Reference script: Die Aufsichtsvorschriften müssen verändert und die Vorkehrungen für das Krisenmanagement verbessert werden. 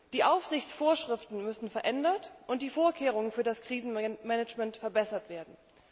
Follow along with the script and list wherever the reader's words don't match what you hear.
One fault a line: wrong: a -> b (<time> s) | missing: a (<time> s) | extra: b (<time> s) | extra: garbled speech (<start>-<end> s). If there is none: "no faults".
no faults